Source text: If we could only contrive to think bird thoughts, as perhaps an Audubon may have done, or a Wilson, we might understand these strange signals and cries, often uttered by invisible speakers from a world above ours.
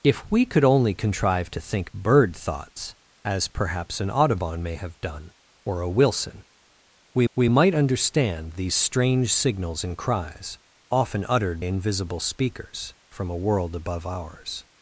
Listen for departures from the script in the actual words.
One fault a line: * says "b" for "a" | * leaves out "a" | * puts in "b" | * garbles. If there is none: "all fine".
* puts in "we"
* leaves out "by"